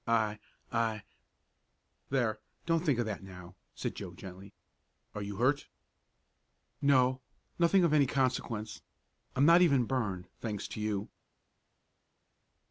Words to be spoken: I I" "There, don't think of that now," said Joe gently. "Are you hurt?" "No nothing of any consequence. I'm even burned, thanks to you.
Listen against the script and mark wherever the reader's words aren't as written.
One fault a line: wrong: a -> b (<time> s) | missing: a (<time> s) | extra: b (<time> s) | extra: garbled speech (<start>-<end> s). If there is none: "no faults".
extra: not (9.4 s)